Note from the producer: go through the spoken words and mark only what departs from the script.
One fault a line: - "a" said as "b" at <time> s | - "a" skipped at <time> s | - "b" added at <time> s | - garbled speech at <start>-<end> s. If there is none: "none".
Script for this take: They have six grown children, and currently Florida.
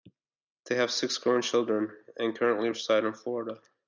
- "reside in" added at 2.7 s